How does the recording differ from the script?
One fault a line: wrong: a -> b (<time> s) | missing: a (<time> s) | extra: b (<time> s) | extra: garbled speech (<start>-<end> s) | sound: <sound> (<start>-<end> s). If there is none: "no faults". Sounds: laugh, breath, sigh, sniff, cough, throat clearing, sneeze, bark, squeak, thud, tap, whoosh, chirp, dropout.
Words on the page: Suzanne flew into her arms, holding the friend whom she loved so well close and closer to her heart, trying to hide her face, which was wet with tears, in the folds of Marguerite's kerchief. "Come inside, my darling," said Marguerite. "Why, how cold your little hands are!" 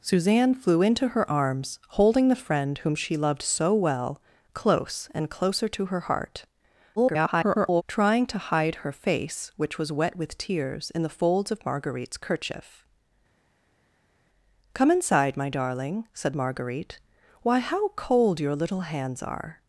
extra: garbled speech (7.0-7.8 s)